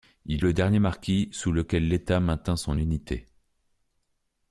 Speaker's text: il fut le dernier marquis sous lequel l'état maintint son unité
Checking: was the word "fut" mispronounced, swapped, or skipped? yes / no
yes